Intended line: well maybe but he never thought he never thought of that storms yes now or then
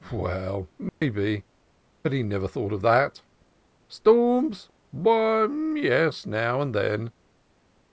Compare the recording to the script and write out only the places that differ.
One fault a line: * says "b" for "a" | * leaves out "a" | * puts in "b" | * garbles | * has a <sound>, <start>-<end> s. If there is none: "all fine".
* has a dropout, 0.9-1.0 s
* leaves out "he never thought"
* puts in "why"
* says "and" for "or"